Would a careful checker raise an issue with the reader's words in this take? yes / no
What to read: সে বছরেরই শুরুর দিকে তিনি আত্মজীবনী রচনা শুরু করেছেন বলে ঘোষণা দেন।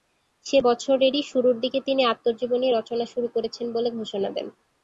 no